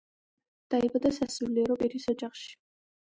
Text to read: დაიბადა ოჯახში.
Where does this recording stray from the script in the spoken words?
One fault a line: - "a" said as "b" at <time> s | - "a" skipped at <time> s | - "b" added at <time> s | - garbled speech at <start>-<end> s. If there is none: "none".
- "სასულიერო პირის" added at 1.2 s